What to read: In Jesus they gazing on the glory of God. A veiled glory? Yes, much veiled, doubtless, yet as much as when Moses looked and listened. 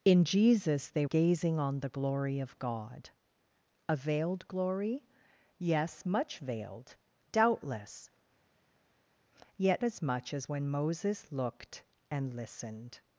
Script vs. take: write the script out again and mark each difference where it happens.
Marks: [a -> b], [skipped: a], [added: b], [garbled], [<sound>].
In Jesus they gazing on the glory of God. A veiled glory? Yes, much veiled, doubtless, yet as much as when Moses looked and listened.